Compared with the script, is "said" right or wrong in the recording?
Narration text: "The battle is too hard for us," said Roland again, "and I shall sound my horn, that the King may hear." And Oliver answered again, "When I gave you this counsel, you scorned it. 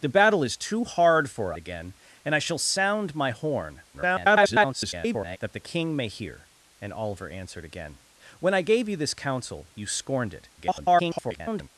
wrong